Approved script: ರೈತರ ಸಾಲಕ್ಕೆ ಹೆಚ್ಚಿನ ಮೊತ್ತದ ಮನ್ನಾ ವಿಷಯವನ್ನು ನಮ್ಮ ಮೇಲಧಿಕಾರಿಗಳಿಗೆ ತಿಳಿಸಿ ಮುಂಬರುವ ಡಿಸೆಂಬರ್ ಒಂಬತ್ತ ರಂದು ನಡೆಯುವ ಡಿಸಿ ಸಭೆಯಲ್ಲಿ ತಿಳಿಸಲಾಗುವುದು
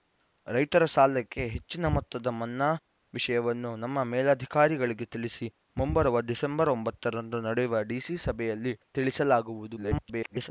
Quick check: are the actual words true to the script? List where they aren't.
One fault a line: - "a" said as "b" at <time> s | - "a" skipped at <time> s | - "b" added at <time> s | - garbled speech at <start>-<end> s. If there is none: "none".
- garbled speech at 9.8-10.5 s